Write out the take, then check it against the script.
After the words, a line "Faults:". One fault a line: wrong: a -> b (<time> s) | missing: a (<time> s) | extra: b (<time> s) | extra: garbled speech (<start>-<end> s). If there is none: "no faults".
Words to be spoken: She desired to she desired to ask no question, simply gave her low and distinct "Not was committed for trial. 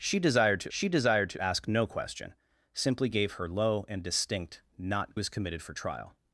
She desired to she desired to ask no question, simply gave her low and distinct "Not was committed for trial.
Faults:
no faults